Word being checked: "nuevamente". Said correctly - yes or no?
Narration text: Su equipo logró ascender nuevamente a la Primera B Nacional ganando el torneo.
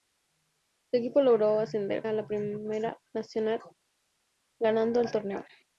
no